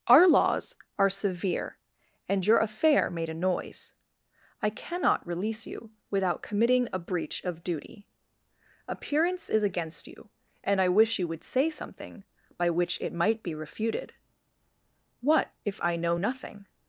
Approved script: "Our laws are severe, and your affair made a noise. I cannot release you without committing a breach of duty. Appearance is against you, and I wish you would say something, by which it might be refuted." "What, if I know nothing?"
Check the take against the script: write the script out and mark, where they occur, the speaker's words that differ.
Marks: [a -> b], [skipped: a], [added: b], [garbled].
"Our laws are severe, and your affair made a noise. I cannot release you without committing a breach of duty. Appearance is against you, and I wish you would say something, by which it might be refuted." "What, if I know nothing?"